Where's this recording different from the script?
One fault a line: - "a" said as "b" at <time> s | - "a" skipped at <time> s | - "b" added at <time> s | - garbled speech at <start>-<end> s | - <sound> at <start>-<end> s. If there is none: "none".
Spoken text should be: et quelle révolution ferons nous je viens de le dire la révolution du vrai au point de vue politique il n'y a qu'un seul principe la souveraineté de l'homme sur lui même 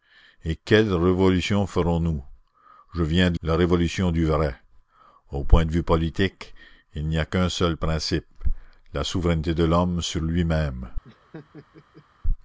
- "le dire" skipped at 3.4 s
- laugh at 11.0-12.1 s